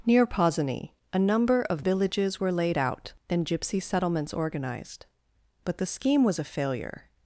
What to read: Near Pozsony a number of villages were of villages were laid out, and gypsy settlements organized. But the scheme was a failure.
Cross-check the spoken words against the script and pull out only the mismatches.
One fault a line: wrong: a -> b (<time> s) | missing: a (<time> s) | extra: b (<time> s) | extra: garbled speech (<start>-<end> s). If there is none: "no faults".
missing: of villages were (2.5 s)